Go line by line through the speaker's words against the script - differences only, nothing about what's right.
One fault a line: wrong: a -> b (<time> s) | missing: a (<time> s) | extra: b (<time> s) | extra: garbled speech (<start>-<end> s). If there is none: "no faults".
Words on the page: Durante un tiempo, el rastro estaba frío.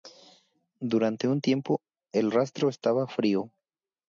no faults